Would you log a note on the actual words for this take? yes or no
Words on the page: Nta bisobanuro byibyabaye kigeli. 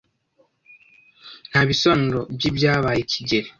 no